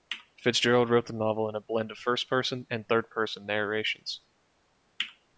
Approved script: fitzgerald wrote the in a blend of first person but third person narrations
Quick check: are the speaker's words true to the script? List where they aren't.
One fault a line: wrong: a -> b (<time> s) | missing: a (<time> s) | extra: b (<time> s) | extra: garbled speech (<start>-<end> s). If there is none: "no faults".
extra: novel (1.1 s)
wrong: but -> and (2.7 s)